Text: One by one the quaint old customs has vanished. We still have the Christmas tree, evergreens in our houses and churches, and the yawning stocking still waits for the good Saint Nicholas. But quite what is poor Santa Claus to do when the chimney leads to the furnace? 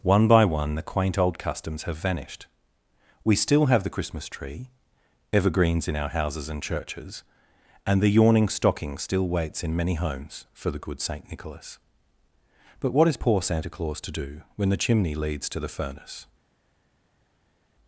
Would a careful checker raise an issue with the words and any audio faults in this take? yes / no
yes